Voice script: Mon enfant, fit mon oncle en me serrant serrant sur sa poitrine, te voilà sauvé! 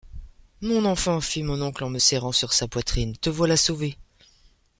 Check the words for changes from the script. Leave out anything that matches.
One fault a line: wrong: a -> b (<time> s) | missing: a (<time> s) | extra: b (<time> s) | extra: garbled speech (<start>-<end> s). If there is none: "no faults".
missing: serrant (2.3 s)